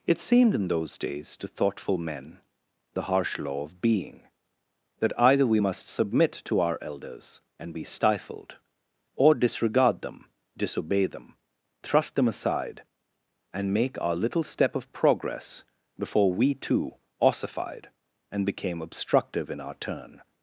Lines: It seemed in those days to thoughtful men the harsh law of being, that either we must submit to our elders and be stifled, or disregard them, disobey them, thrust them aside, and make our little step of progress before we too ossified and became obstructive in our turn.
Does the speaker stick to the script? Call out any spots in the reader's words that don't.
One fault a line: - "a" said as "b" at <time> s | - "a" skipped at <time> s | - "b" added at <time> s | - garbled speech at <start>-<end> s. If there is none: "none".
none